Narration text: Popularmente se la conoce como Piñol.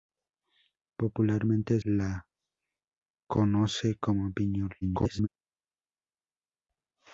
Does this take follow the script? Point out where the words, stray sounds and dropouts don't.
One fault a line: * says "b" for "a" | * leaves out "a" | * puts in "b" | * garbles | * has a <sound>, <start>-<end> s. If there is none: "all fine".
* leaves out "se"
* garbles